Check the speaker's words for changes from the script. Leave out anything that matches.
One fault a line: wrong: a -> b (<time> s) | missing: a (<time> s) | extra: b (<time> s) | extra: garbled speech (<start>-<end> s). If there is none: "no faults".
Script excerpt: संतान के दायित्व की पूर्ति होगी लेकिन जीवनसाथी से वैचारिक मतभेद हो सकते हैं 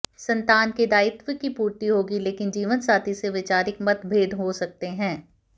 no faults